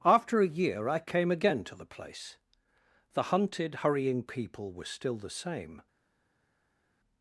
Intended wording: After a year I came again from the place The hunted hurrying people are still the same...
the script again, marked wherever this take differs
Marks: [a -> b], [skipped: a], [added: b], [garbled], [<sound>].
After a year I came again [from -> to] the place The hunted hurrying people [are -> were] still the same...